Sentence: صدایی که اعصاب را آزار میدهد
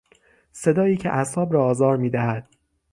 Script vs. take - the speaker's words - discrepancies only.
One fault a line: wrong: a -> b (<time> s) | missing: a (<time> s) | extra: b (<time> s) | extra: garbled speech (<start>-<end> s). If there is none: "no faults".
no faults